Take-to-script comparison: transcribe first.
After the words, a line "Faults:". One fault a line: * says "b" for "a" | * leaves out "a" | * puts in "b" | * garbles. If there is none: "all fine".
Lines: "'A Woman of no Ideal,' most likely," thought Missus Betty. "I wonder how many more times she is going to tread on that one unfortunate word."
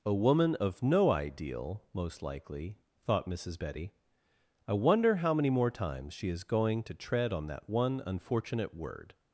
"'A Woman of no Ideal,' most likely," thought Missus Betty. "I wonder how many more times she is going to tread on that one unfortunate word."
Faults:
all fine